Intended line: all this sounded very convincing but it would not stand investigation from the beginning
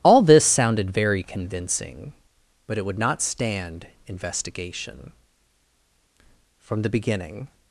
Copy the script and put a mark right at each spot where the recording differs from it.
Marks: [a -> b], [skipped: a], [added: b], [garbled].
all this sounded very convincing but it would not stand investigation from the beginning